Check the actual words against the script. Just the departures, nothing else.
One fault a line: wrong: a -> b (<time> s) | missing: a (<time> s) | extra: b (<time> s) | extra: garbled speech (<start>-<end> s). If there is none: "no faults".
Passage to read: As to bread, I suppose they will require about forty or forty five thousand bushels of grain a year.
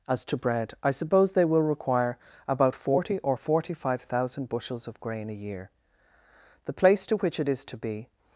extra: The place to which it is to be (6.7 s)